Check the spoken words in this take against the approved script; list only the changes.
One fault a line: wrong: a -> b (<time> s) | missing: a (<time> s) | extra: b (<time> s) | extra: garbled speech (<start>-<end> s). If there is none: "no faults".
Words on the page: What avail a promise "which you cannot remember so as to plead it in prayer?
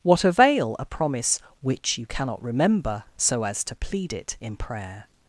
no faults